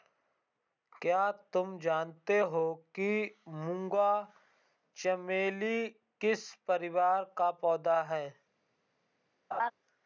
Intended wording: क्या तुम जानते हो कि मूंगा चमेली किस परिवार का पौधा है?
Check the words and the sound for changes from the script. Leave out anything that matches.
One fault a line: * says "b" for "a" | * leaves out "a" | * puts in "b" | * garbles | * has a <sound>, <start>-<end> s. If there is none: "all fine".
* has a laugh, 9.5-9.7 s